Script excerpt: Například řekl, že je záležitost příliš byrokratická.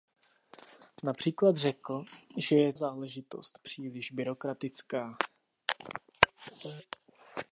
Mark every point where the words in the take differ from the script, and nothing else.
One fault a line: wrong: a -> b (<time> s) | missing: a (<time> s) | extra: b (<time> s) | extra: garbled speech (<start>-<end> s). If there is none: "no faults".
no faults